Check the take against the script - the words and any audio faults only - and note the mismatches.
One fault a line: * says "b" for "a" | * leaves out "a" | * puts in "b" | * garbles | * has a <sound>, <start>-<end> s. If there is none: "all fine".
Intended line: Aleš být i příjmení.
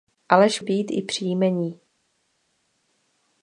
all fine